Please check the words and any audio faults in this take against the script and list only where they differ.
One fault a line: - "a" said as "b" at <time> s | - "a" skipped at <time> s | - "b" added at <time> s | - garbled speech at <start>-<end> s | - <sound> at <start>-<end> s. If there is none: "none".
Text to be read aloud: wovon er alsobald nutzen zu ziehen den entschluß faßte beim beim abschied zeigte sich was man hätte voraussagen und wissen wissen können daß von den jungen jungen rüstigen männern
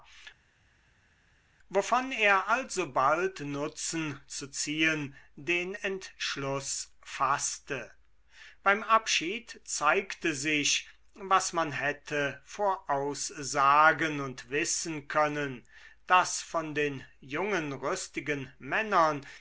- "beim" skipped at 8.8 s
- "wissen" skipped at 15.1 s
- "jungen" skipped at 17.7 s